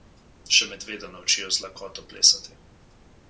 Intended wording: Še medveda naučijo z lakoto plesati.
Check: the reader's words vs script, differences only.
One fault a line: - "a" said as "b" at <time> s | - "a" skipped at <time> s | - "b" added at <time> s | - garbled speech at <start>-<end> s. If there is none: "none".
none